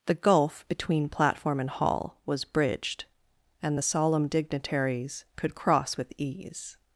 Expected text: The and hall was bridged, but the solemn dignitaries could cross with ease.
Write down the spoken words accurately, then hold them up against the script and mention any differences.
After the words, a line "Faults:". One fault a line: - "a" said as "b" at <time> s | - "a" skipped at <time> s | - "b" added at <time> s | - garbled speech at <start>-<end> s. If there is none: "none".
The gulf between platform and hall was bridged, and the solemn dignitaries could cross with ease.
Faults:
- "gulf between platform" added at 0.1 s
- "but" said as "and" at 3.6 s